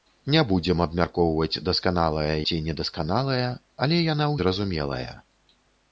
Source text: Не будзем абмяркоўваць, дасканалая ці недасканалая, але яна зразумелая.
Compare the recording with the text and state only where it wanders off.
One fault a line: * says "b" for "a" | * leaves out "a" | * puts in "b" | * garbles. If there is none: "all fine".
all fine